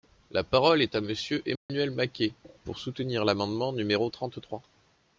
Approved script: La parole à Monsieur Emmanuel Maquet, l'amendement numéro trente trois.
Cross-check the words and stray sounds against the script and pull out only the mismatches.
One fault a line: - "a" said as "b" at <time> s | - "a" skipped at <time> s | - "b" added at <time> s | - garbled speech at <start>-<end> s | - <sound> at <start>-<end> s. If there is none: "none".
- "est" added at 0.8 s
- dropout at 1.6-1.7 s
- "pour soutenir" added at 2.6 s